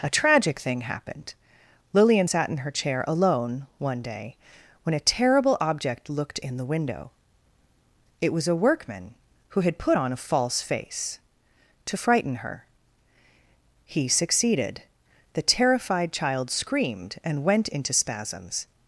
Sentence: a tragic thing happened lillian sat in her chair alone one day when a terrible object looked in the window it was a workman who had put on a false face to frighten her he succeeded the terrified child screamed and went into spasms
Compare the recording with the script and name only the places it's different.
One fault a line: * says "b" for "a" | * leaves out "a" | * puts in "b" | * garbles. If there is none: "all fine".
all fine